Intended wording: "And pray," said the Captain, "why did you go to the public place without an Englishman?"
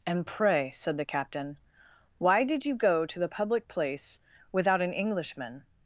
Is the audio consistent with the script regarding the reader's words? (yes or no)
yes